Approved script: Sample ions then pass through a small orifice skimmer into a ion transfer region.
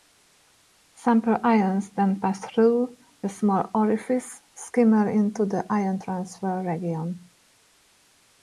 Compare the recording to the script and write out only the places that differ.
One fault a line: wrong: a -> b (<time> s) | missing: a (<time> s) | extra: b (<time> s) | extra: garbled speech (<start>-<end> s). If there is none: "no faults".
wrong: a -> the (5.5 s)